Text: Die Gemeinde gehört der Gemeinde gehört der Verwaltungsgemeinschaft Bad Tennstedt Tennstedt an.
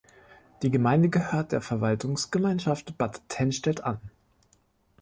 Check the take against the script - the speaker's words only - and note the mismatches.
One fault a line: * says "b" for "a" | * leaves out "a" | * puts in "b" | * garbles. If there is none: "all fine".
* leaves out "Gemeinde gehört der"
* leaves out "Tennstedt"